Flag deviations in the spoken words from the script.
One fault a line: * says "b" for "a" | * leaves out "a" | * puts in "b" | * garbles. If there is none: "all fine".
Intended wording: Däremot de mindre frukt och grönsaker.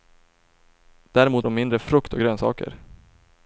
all fine